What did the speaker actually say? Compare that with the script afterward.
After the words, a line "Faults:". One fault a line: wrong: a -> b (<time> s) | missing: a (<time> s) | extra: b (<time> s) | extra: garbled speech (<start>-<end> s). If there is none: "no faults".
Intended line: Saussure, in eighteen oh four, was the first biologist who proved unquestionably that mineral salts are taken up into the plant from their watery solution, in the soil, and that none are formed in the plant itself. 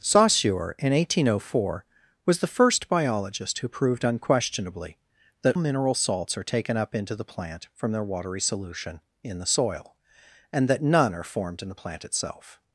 Saussure, in eighteen oh four, was the first biologist who proved unquestionably that mineral salts are taken up into the plant from their watery solution, in the soil, and that none are formed in the plant itself.
Faults:
no faults